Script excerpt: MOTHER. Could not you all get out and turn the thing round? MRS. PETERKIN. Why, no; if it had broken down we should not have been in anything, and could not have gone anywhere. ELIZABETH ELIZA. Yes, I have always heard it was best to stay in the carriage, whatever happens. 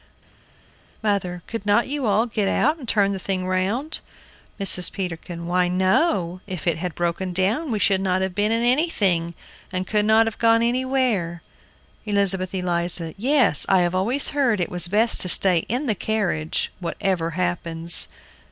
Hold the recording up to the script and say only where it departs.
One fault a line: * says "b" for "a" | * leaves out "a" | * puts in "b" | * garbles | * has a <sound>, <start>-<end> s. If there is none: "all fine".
all fine